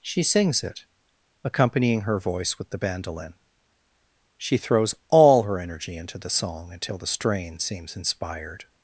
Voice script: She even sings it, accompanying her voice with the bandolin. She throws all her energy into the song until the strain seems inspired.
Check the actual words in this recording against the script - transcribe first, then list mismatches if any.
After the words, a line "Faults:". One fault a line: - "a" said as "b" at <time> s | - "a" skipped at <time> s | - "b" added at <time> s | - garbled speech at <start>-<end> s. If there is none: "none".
She sings it, accompanying her voice with the bandolin. She throws all her energy into the song until the strain seems inspired.
Faults:
- "even" skipped at 0.2 s